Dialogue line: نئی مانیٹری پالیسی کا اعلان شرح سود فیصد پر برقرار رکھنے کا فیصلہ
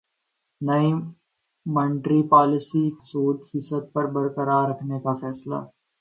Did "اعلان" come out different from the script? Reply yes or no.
yes